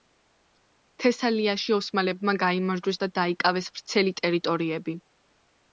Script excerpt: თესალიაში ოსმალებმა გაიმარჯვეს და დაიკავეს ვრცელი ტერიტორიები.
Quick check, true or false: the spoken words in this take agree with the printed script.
true